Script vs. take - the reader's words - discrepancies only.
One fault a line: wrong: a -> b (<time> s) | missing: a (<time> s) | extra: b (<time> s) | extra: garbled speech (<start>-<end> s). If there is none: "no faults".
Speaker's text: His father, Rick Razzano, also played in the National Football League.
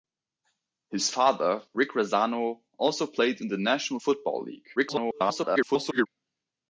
extra: garbled speech (4.8-6.1 s)